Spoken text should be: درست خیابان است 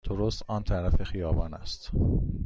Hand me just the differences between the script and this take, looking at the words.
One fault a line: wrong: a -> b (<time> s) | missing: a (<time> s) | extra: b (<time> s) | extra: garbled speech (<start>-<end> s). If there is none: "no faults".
extra: آن طرف (0.5 s)